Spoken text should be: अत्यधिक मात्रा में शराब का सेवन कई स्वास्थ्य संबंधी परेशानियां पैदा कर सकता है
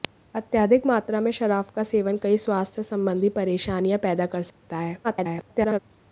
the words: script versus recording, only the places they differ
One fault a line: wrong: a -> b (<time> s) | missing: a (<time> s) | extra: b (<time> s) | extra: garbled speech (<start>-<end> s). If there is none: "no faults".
extra: garbled speech (5.0-5.8 s)